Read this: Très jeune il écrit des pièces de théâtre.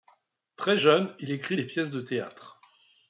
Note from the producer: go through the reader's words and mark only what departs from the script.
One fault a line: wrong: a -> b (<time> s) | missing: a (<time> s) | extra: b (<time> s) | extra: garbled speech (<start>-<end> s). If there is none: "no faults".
no faults